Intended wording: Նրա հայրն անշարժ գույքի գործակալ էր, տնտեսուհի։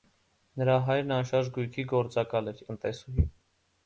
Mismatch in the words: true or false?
false